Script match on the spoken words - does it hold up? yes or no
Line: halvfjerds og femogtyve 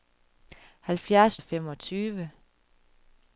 yes